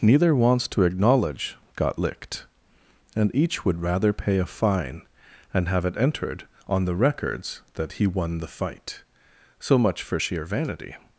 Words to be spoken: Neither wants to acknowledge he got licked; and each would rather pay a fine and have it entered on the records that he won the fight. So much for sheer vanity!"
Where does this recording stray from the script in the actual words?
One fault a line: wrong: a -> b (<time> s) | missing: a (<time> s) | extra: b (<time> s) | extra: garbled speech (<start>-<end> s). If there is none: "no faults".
missing: he (1.6 s)